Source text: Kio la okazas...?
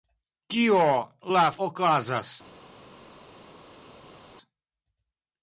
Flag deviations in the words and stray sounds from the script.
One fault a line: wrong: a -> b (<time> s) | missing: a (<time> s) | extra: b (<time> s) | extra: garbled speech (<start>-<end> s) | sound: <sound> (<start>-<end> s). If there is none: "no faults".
no faults